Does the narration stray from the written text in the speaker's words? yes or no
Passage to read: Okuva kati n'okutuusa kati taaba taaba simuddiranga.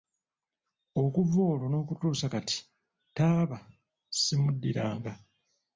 yes